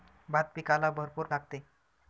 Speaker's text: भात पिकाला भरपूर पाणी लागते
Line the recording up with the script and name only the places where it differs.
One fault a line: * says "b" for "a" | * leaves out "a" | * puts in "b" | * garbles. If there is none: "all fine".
* leaves out "पाणी"